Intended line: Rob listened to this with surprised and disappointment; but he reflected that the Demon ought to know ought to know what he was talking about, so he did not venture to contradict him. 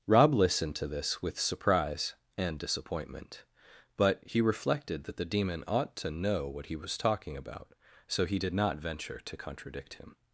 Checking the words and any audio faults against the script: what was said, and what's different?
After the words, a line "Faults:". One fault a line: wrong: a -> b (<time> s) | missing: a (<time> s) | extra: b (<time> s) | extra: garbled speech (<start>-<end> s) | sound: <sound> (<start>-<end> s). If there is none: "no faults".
Rob listened to this with surprise and disappointment; but he reflected that the Demon ought to know what he was talking about, so he did not venture to contradict him.
Faults:
wrong: surprised -> surprise (1.4 s)
missing: ought to know (6.5 s)